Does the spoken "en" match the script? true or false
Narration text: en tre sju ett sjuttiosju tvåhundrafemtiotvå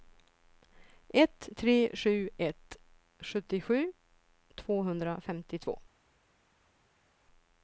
false